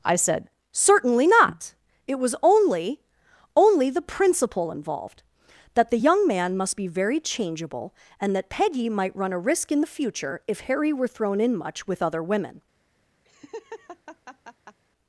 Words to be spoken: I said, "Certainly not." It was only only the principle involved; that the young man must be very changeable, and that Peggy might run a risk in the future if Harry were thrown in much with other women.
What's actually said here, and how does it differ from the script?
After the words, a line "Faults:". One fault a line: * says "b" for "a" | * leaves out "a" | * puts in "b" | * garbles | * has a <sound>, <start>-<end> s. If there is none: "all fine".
I said, "Certainly not." It was only only the principle involved; that the young man must be very changeable, and that Peggy might run a risk in the future if Harry were thrown in much with other women.
Faults:
* has a laugh, 13.2-14.8 s